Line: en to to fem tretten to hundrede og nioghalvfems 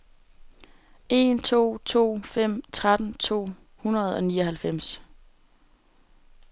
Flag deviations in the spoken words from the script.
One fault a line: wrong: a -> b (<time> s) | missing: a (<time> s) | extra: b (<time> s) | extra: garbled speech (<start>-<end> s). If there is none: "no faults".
no faults